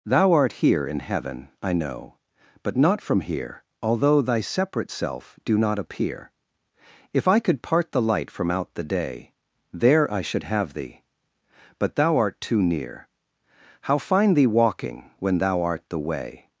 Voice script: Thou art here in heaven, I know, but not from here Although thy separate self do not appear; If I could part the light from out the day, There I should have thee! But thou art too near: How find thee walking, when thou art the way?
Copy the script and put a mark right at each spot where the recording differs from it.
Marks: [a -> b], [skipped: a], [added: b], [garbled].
Thou art here in heaven, I know, but not from here Although thy separate self do not appear; If I could part the light from out the day, There I should have thee! But thou art too near: How find thee walking, when thou art the way?